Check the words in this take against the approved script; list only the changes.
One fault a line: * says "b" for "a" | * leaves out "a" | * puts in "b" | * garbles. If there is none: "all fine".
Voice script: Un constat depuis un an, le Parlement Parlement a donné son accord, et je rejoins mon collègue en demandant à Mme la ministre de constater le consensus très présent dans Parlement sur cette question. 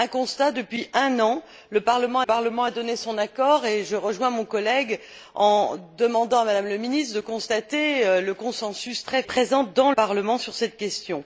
all fine